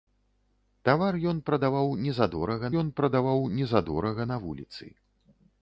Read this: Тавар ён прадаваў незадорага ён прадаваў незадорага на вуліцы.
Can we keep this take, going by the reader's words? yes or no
yes